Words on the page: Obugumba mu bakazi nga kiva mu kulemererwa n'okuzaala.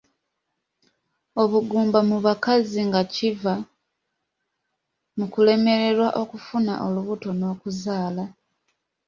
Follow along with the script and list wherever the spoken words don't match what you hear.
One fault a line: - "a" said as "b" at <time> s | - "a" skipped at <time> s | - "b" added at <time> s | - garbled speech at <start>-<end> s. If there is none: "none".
- "okufuna olubuto" added at 6.2 s